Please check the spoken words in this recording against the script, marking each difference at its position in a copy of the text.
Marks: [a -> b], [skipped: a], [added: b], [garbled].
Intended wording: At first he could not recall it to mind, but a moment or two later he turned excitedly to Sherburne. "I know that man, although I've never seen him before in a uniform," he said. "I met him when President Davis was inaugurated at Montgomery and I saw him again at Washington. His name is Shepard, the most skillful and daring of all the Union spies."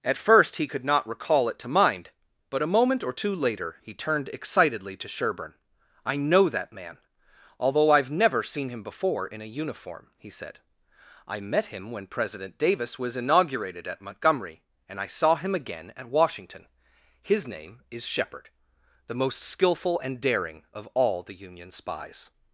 At first he could not recall it to mind, but a moment or two later he turned excitedly to Sherburne. "I know that man, although I've never seen him before in a uniform," he said. "I met him when President Davis was inaugurated at Montgomery and I saw him again at Washington. His name is Shepard, the most skillful and daring of all the Union spies."